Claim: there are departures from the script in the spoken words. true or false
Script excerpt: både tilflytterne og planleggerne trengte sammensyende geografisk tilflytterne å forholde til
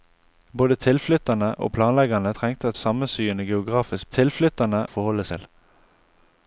false